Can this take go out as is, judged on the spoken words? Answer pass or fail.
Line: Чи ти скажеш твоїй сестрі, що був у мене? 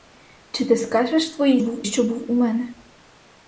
fail